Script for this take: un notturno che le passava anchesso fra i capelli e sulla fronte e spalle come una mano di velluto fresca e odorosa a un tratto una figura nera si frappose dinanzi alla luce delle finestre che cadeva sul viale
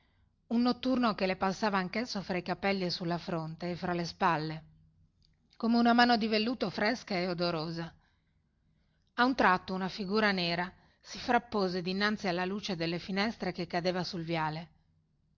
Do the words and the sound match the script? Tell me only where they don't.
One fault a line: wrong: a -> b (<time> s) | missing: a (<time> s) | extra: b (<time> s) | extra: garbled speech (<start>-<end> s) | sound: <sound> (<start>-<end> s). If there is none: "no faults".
extra: fra le (3.8 s)